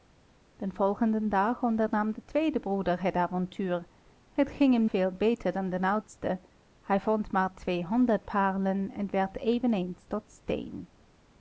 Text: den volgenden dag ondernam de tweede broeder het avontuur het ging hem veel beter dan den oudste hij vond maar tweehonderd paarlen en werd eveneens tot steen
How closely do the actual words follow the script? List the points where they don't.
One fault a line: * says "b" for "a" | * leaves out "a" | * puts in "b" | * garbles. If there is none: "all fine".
all fine